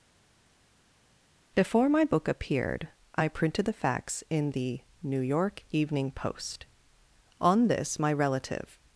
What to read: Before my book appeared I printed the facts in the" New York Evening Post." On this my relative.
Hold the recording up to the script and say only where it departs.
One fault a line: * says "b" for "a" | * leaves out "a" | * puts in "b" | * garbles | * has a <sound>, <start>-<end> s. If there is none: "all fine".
all fine